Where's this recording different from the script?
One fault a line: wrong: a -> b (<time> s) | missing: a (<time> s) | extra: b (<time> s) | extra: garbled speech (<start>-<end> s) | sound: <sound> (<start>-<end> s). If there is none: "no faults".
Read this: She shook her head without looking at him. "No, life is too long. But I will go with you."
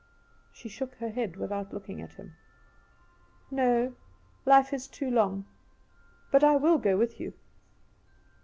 no faults